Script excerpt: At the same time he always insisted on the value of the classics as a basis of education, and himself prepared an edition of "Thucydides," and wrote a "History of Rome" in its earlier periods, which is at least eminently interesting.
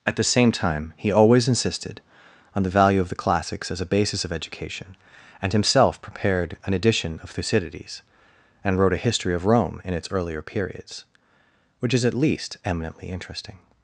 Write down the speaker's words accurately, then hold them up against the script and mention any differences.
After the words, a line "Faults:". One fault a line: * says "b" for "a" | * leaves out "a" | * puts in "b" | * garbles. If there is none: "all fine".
At the same time he always insisted on the value of the classics as a basis of education, and himself prepared an edition of "Thucydides," and wrote a "History of Rome" in its earlier periods, which is at least eminently interesting.
Faults:
all fine